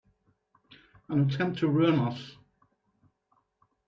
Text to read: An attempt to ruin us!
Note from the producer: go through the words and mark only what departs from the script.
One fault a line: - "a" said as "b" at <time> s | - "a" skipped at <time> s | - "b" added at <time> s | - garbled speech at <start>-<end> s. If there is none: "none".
none